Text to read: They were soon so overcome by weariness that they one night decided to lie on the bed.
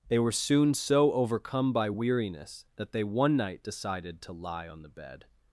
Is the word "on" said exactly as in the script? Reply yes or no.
yes